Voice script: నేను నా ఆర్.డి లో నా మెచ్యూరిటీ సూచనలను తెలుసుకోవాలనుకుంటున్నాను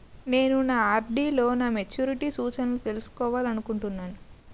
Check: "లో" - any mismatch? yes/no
no